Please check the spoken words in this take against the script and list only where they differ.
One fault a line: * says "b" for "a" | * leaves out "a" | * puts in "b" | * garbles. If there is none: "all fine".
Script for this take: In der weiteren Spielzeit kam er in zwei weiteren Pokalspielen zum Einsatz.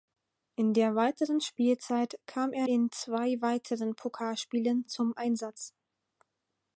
all fine